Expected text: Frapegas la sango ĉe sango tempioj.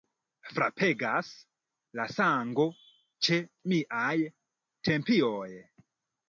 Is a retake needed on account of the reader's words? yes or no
yes